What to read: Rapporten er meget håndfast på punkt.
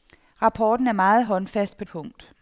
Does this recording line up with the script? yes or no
yes